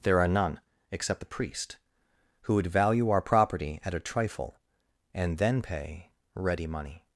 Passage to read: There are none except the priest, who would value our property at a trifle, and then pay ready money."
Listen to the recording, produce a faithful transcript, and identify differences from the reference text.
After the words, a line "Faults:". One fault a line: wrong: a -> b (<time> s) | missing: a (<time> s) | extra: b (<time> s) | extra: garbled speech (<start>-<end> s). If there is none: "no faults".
There are none except the priest, who would value our property at a trifle, and then pay ready money."
Faults:
no faults